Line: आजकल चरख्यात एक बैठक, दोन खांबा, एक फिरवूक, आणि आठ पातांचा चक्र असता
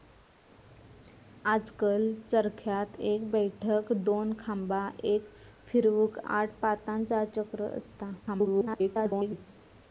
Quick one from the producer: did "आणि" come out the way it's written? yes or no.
no